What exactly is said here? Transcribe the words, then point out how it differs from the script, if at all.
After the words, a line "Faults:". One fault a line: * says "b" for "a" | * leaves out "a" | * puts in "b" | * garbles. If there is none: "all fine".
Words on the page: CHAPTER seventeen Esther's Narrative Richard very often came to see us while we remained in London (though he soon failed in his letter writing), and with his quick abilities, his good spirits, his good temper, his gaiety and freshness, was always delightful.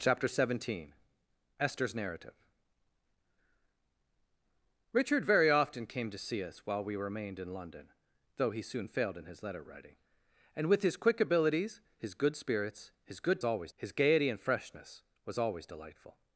CHAPTER seventeen Esther's Narrative Richard very often came to see us while we remained in London (though he soon failed in his letter writing), and with his quick abilities, his good spirits, his good always, his gaiety and freshness, was always delightful.
Faults:
* says "always" for "temper"